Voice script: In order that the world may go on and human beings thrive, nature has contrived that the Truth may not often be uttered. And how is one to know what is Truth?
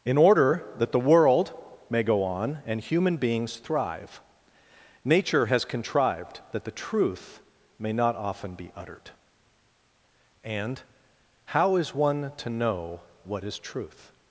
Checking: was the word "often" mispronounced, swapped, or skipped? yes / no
no